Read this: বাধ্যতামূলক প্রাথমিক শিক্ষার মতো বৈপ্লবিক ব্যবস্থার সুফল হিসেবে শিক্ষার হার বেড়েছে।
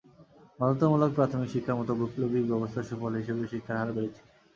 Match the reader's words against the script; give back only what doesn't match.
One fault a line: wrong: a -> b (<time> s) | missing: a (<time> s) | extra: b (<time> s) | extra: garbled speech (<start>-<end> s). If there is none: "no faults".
no faults